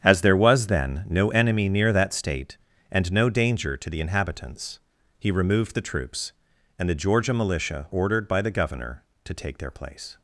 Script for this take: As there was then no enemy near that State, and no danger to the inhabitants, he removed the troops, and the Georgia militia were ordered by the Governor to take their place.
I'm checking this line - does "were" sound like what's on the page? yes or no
no